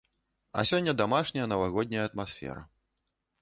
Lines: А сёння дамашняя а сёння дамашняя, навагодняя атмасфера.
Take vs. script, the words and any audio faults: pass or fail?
fail